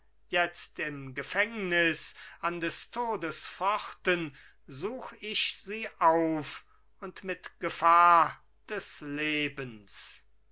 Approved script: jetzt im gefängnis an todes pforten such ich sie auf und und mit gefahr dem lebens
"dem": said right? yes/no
no